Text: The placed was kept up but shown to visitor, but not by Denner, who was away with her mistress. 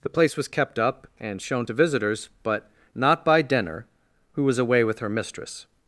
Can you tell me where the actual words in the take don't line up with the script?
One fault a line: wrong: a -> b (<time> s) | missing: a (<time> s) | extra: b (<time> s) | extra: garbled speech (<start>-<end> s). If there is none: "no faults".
wrong: placed -> place (0.1 s)
wrong: but -> and (1.2 s)
wrong: visitor -> visitors (1.7 s)